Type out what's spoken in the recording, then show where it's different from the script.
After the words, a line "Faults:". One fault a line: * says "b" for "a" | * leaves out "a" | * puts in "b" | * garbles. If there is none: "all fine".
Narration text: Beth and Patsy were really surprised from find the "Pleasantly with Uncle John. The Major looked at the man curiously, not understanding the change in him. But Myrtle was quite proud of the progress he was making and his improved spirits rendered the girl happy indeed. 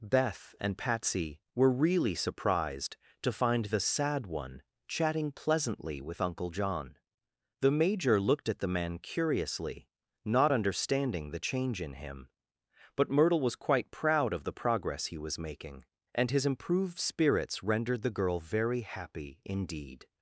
Beth and Patsy were really surprised to find the "Sad One" chatting pleasantly with Uncle John. The Major looked at the man curiously, not understanding the change in him. But Myrtle was quite proud of the progress he was making and his improved spirits rendered the girl very happy indeed.
Faults:
* says "to" for "from"
* puts in "Sad One chatting"
* puts in "very"